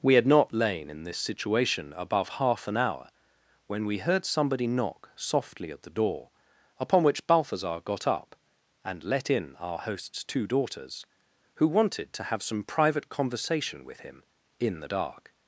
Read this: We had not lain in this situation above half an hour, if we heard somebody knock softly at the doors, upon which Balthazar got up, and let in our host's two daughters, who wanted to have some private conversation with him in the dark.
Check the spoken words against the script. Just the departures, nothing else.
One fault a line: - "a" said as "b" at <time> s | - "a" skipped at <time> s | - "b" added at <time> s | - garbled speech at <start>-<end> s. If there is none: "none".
- "if" said as "when" at 3.7 s
- "doors" said as "door" at 5.9 s